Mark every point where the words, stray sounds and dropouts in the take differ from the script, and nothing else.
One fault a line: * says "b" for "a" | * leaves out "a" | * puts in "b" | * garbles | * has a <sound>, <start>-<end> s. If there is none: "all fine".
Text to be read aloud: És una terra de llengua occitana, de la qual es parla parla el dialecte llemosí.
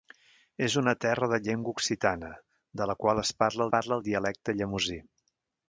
all fine